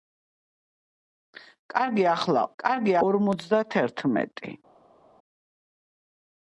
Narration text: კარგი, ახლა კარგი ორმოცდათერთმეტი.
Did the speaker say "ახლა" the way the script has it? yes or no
yes